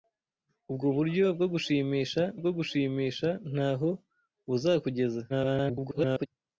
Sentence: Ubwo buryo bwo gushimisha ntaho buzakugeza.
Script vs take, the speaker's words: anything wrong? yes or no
yes